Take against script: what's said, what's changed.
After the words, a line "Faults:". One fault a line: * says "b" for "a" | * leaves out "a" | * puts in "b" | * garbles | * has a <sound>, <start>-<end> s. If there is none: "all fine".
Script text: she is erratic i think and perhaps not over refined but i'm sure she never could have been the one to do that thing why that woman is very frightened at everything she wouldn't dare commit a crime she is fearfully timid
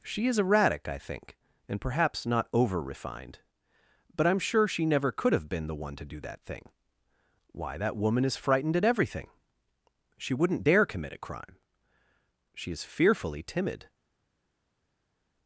she is erratic i think and perhaps not over refined but i'm sure she never could have been the one to do that thing why that woman is frightened at everything she wouldn't dare commit a crime she is fearfully timid
Faults:
* leaves out "very"